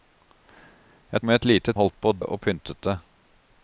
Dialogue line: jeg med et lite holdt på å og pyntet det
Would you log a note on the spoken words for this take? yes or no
no